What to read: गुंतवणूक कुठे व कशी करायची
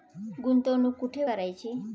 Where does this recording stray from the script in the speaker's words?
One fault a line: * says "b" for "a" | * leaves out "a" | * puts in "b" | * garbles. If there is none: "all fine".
* leaves out "व कशी"